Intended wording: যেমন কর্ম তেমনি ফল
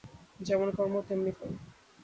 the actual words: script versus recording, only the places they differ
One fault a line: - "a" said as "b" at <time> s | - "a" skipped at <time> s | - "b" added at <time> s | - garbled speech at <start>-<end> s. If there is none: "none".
none